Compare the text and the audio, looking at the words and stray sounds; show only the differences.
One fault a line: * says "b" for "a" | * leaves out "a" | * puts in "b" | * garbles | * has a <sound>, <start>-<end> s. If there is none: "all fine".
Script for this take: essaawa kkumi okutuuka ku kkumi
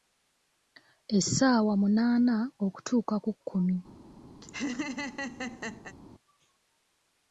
* says "munaana" for "kkumi"
* has a laugh, 4.4-6.0 s